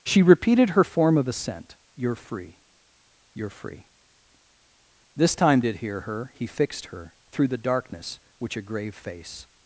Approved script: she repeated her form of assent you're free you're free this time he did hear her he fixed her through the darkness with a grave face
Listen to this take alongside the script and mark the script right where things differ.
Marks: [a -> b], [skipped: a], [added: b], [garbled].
she repeated her form of assent you're free you're free this time [skipped: he] did hear her he fixed her through the darkness [with -> which] a grave face